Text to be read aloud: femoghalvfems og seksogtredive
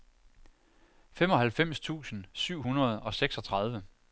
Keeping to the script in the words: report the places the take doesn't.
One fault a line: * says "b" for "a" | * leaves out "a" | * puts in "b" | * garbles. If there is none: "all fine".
* puts in "tusind syv hundrede"